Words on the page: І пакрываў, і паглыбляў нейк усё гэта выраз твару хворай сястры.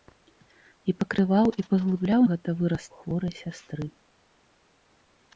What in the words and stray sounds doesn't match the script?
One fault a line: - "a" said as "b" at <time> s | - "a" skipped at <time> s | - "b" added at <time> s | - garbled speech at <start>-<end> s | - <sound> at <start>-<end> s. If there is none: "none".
- "нейк усё" skipped at 2.2 s
- "твару" skipped at 2.8 s